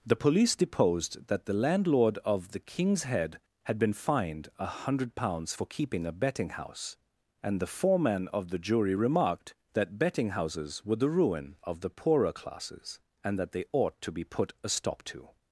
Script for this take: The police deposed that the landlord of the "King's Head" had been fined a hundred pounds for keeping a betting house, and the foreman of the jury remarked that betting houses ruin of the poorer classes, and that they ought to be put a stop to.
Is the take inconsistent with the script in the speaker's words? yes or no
yes